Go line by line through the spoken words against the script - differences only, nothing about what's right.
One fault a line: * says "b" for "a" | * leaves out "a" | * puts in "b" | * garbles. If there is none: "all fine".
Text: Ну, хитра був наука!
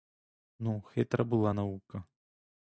* says "була" for "був"